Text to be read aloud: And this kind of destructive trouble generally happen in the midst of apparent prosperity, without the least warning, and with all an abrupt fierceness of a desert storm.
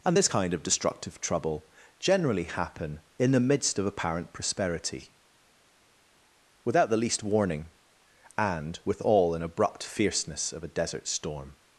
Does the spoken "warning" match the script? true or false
true